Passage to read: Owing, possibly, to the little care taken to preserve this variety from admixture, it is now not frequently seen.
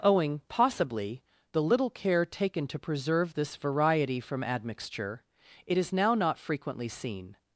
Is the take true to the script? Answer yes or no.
no